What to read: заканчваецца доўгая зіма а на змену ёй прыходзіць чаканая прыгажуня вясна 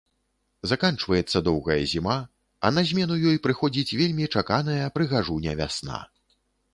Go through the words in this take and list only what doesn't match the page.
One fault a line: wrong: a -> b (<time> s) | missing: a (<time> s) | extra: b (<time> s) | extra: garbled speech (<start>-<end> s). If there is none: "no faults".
extra: вельмі (4.0 s)